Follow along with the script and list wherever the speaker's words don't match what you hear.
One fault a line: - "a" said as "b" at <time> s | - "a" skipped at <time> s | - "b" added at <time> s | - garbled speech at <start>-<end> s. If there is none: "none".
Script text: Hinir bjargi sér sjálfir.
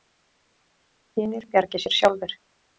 none